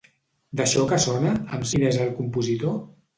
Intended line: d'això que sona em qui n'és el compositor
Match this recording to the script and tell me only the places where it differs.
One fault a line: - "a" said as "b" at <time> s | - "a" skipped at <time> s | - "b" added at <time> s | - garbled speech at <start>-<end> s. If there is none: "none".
none